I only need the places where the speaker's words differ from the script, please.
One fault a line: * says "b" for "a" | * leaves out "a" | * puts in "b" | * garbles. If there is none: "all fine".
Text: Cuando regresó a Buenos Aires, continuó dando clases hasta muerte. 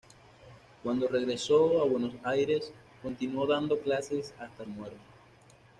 all fine